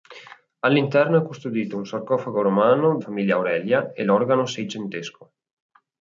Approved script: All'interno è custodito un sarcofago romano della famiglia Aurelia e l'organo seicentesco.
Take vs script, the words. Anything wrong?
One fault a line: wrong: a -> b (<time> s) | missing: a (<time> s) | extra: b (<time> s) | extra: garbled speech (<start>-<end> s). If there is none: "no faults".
missing: della (3.0 s)